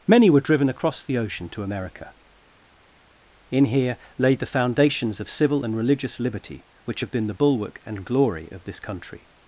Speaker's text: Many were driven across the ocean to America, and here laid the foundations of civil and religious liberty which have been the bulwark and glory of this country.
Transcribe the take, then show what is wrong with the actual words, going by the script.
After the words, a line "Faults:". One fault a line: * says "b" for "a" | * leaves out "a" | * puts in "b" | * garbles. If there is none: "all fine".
Many were driven across the ocean to America, in here laid the foundations of civil and religious liberty which have been the bulwark and glory of this country.
Faults:
* says "in" for "and"